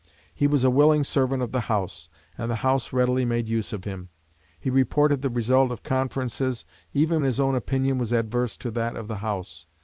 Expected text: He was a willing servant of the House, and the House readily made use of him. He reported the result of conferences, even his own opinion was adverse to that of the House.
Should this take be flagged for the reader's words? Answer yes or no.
no